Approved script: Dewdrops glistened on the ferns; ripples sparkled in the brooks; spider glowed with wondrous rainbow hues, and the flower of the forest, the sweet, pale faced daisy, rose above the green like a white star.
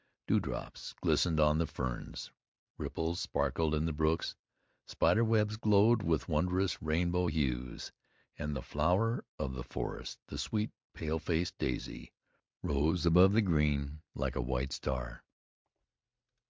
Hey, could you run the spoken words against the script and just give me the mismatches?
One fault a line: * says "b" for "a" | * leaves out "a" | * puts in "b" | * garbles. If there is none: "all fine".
* puts in "webs"